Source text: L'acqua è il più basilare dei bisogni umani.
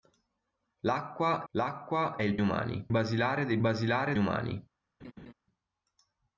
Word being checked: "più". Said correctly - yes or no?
no